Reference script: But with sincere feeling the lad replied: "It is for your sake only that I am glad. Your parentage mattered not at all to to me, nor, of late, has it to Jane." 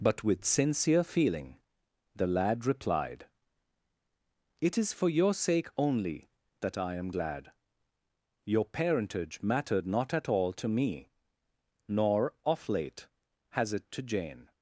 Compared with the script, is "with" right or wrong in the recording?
right